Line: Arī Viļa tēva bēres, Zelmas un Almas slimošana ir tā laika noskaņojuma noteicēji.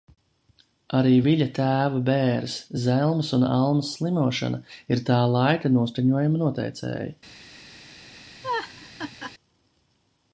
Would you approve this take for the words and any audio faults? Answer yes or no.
no